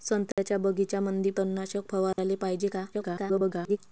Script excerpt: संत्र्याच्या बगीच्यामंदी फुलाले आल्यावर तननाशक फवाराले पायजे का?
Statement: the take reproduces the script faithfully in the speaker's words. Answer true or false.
false